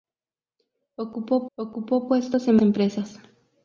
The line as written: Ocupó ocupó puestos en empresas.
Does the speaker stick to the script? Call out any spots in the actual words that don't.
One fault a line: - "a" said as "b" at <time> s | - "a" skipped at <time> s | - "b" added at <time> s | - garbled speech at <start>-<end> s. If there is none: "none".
none